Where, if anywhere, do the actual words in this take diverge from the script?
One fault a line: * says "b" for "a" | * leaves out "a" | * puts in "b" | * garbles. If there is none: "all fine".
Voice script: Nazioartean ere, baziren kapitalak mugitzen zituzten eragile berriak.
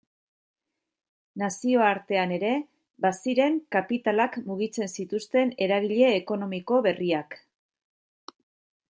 * puts in "ekonomiko"